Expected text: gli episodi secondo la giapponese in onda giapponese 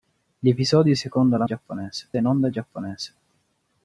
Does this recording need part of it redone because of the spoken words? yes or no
no